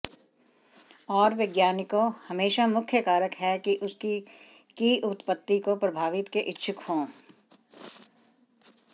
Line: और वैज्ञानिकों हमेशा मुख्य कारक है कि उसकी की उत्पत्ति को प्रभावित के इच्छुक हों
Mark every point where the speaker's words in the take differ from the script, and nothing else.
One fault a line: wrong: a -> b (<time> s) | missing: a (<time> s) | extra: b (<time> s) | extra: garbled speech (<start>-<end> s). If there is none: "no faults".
no faults